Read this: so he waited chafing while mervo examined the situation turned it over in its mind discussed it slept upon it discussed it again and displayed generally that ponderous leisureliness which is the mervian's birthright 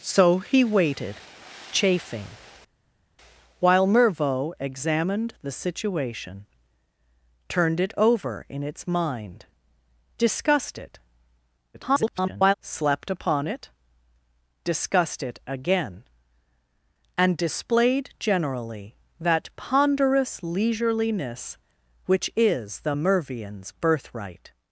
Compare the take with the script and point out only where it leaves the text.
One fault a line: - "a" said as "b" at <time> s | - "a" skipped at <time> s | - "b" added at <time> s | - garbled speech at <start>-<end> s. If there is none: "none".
- garbled speech at 11.7-12.5 s